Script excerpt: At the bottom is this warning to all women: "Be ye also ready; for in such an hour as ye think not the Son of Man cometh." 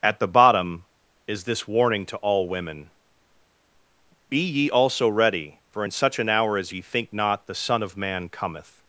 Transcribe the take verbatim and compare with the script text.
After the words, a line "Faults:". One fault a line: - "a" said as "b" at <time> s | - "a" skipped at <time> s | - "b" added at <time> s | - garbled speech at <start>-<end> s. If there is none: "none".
At the bottom is this warning to all women: "Be ye also ready; for in such an hour as ye think not the Son of Man cometh."
Faults:
none